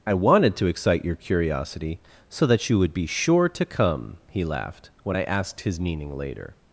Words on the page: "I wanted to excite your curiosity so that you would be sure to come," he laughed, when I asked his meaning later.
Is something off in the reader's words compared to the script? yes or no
no